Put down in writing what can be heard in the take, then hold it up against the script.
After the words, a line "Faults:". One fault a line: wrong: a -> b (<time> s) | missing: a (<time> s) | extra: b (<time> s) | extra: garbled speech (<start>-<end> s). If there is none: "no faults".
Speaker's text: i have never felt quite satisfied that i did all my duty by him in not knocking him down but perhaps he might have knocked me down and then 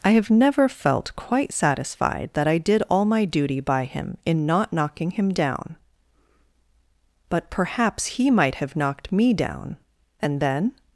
i have never felt quite satisfied that i did all my duty by him in not knocking him down but perhaps he might have knocked me down and then
Faults:
no faults